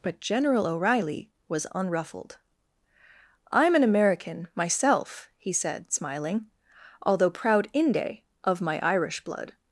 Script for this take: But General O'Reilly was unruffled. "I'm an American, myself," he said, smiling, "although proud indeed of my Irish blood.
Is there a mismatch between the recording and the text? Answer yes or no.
yes